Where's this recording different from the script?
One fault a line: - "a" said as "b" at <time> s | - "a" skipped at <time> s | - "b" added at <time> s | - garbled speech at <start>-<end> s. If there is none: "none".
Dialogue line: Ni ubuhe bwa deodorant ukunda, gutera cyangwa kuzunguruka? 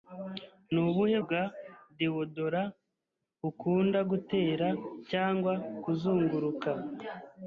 none